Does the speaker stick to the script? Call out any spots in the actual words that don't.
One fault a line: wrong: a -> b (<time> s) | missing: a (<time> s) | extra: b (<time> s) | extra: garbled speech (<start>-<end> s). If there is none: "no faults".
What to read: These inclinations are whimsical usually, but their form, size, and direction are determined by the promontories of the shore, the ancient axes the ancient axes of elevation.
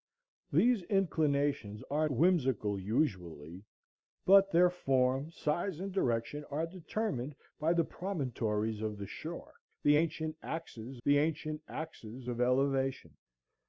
no faults